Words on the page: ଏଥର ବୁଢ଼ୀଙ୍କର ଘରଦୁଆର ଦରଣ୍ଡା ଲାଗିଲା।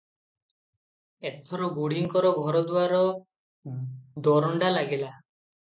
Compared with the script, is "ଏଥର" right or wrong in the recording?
right